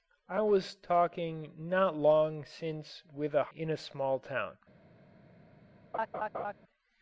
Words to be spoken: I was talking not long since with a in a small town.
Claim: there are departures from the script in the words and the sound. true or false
true